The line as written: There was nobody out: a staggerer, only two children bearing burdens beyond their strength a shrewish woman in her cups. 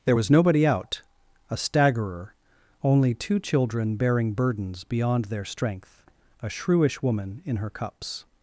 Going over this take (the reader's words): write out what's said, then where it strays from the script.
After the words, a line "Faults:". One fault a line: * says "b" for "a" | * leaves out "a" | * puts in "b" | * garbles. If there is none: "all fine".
There was nobody out: a staggerer, only two children bearing burdens beyond their strength a shrewish woman in her cups.
Faults:
all fine